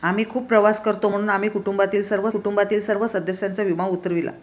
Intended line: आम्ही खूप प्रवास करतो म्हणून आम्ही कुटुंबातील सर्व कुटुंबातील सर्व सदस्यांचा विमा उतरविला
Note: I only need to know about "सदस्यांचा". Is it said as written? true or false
true